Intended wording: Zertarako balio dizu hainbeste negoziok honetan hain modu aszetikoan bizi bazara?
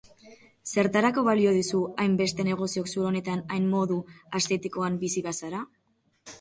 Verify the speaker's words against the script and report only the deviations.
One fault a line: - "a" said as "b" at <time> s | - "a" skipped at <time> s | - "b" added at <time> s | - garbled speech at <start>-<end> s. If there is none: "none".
- "zulo" added at 3.0 s